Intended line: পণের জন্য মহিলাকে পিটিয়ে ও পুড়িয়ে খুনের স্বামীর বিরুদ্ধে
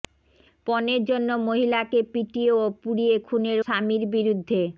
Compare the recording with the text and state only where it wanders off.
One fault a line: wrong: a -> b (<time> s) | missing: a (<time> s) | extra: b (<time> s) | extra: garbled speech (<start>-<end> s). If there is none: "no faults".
no faults